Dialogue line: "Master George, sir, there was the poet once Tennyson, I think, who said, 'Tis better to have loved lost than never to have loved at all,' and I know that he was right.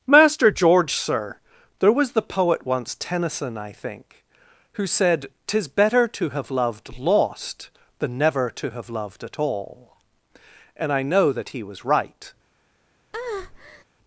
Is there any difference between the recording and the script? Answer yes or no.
no